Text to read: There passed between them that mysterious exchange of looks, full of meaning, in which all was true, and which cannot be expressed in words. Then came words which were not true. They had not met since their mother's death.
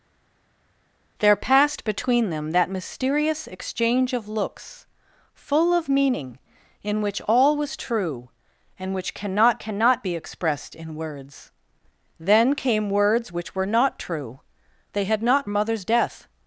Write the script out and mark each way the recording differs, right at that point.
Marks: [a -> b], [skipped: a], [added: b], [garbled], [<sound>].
There passed between them that mysterious exchange of looks, full of meaning, in which all was true, and which cannot [added: cannot] be expressed in words. Then came words which were not true. They had not [skipped: met since their] mother's death.